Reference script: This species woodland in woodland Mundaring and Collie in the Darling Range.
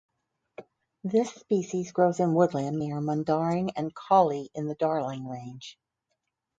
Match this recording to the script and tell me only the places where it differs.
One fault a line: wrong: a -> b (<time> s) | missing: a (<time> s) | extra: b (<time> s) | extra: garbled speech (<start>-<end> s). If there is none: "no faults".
wrong: woodland -> grows (1.9 s)
extra: near (2.8 s)